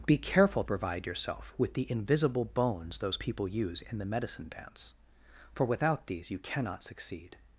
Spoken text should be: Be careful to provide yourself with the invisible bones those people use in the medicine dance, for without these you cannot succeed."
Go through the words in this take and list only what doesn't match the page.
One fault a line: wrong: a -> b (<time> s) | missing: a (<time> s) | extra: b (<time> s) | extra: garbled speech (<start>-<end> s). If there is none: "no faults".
missing: to (0.6 s)